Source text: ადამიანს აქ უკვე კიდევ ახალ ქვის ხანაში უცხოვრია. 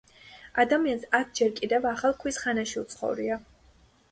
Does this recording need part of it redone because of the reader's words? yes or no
yes